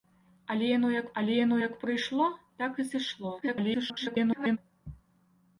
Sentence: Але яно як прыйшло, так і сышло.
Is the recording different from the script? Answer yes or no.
yes